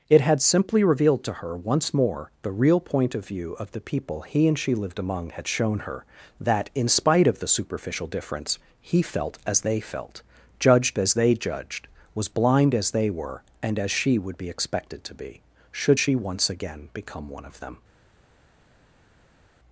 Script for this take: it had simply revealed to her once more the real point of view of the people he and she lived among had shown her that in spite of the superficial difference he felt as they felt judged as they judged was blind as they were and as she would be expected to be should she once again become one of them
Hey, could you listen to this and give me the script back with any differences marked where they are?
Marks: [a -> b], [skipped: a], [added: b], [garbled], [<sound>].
it had simply revealed to her once more the real point of view of the people he and she lived among had shown her that in spite of the superficial difference he felt as they felt judged as they judged was blind as they were and as she would be expected to be should she once again become one of them